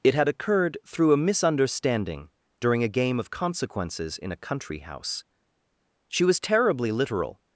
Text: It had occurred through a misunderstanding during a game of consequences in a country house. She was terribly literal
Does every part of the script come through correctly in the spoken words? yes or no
yes